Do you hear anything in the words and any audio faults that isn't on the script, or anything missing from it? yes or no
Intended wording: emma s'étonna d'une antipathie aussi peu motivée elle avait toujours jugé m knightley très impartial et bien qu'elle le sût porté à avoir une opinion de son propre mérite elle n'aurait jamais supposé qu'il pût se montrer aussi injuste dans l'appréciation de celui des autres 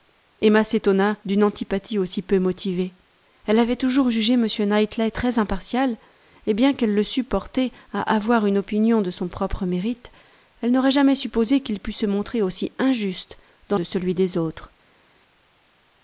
yes